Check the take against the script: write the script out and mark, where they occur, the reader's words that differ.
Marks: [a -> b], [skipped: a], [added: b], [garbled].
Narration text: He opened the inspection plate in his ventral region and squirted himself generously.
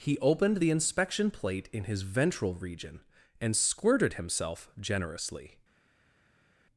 He opened the inspection plate in his ventral region and squirted himself generously.